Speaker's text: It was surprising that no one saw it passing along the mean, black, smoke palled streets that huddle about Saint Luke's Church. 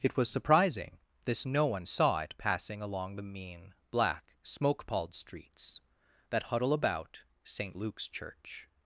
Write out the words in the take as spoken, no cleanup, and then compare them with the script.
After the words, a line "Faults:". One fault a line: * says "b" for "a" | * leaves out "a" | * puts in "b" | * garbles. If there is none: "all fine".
It was surprising this no one saw it passing along the mean, black, smoke palled streets that huddle about Saint Luke's Church.
Faults:
* says "this" for "that"